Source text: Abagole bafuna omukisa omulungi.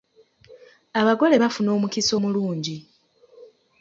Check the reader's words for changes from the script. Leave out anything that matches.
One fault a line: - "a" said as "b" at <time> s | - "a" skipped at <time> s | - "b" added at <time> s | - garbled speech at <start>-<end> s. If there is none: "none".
none